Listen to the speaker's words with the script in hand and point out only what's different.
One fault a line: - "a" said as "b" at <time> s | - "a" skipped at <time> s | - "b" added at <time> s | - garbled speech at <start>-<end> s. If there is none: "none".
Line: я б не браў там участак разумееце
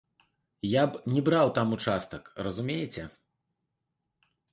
none